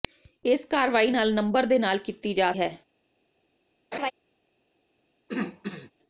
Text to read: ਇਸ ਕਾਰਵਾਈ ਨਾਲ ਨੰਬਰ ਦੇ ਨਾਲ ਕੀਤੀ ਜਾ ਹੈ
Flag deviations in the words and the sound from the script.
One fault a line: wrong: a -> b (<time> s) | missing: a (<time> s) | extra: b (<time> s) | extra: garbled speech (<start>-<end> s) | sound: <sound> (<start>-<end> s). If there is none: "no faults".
sound: laugh (3.9-4.1 s)
sound: throat clearing (5.3-5.9 s)